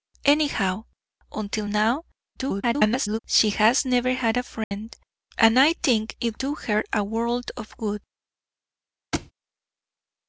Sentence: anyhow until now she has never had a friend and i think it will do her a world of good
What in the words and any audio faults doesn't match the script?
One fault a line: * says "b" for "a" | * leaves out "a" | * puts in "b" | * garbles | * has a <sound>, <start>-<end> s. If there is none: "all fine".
* garbles
* has a dropout, 4.6-4.7 s
* leaves out "will"
* has a thud, 9.1-9.3 s